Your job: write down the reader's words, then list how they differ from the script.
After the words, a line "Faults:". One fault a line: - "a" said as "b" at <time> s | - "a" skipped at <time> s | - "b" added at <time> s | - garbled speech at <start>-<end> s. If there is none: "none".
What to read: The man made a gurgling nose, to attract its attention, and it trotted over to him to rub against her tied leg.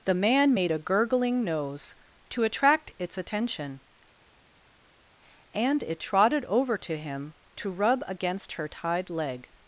The man made a gurgling nose, to attract its attention, and it trotted over to him to rub against her tied leg.
Faults:
none